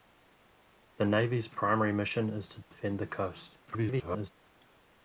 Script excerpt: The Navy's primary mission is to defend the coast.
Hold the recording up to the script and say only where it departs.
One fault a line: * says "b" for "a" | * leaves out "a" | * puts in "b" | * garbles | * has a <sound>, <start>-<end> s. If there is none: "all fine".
* has a dropout, 2.6-2.7 s
* garbles